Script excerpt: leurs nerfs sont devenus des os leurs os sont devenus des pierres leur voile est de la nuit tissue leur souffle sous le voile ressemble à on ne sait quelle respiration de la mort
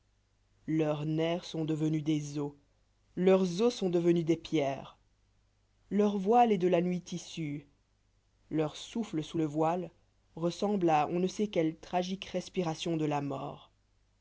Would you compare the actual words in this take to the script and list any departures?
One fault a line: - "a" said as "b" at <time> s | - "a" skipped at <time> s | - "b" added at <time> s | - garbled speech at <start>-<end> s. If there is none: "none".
- "tragique" added at 11.8 s